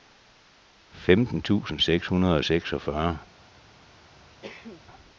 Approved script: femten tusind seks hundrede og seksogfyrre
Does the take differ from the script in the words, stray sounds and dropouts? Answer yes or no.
yes